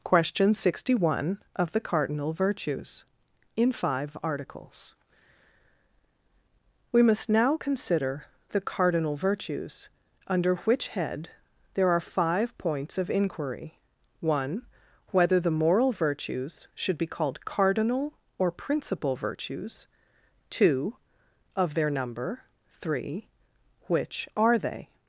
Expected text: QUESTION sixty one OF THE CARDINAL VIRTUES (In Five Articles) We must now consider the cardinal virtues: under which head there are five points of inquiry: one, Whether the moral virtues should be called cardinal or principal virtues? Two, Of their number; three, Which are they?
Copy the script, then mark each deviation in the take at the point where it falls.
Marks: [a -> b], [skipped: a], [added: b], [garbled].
QUESTION sixty one OF THE CARDINAL VIRTUES (In Five Articles) We must now consider the cardinal virtues: under which head there are five points of inquiry: one, Whether the moral virtues should be called cardinal or principal virtues? Two, Of their number; three, Which are they?